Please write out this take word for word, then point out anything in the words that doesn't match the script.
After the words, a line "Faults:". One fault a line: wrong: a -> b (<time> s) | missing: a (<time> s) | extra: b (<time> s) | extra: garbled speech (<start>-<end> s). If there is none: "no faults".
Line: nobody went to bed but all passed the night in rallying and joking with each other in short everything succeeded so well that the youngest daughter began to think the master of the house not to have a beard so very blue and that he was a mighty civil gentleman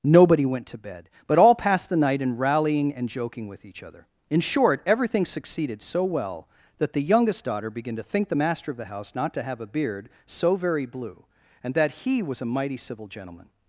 nobody went to bed but all passed the night in rallying and joking with each other in short everything succeeded so well that the youngest daughter began to think the master of the house not to have a beard so very blue and that he was a mighty civil gentleman
Faults:
no faults